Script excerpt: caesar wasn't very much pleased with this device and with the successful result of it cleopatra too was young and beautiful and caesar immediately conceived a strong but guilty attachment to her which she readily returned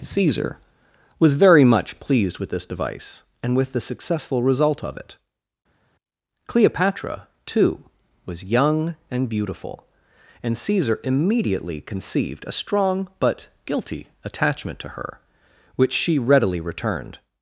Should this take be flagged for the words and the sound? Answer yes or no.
yes